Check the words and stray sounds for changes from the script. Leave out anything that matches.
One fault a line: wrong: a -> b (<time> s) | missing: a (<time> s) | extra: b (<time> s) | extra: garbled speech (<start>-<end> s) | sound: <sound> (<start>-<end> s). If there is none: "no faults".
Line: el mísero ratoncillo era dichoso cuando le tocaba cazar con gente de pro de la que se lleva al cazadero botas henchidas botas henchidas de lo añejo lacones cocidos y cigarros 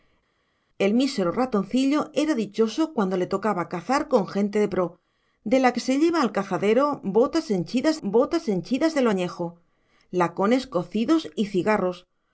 no faults